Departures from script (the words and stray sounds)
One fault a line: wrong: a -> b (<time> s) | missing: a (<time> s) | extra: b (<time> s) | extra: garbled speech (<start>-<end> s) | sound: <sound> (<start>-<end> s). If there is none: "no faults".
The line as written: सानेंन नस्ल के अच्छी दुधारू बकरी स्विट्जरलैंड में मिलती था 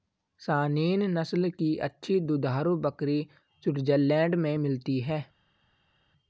wrong: के -> की (1.5 s)
wrong: था -> है (5.0 s)